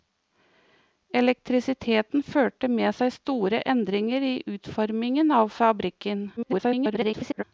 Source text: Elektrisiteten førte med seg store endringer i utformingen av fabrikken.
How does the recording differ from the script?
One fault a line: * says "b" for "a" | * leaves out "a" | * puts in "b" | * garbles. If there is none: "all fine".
* garbles